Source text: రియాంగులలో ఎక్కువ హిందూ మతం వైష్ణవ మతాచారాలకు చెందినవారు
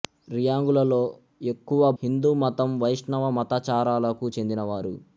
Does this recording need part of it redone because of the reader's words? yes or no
no